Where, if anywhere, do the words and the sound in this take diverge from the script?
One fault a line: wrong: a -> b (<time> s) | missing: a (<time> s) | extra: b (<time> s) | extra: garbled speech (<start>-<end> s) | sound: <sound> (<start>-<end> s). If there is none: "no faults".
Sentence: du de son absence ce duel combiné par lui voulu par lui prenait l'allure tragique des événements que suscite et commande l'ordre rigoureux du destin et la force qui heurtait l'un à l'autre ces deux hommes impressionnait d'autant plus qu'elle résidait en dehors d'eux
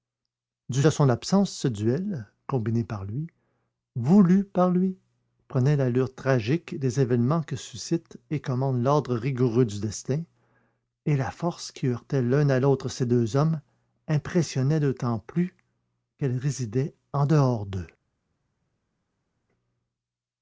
no faults